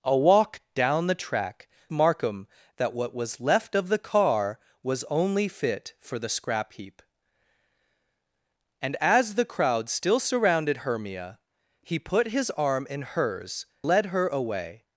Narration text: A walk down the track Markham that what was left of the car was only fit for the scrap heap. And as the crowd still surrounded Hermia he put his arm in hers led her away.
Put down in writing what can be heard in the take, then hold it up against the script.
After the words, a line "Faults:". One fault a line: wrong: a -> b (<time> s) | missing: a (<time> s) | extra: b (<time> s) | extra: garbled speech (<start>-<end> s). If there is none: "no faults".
A walk down the track Markham that what was left of the car was only fit for the scrap heap. And as the crowd still surrounded Hermia he put his arm in hers led her away.
Faults:
no faults